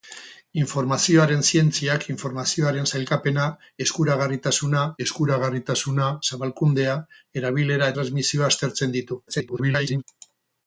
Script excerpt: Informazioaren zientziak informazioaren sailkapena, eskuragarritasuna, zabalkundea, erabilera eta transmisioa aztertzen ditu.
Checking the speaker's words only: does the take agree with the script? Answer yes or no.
no